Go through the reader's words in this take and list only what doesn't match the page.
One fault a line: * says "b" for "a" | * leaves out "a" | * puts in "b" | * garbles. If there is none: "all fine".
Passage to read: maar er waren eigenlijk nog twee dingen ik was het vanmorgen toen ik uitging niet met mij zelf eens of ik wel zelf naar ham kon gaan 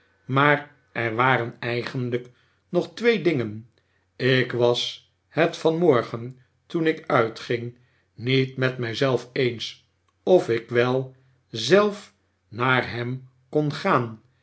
all fine